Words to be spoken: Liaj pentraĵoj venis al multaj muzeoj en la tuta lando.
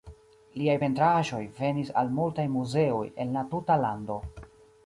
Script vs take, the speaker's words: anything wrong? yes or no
no